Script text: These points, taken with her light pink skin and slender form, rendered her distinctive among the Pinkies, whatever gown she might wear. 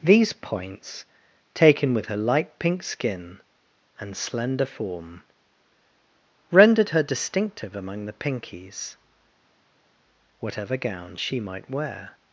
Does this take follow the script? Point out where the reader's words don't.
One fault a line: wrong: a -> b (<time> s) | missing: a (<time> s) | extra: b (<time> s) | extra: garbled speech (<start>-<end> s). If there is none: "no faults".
no faults